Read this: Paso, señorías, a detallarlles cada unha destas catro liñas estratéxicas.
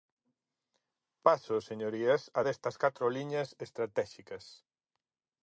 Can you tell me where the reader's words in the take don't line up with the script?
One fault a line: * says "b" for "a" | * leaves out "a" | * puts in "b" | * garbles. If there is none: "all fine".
* leaves out "detallarlles cada unha"